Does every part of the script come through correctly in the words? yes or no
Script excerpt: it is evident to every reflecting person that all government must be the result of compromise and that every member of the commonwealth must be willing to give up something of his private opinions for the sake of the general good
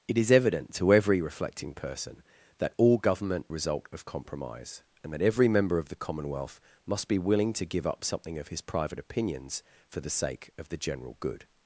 no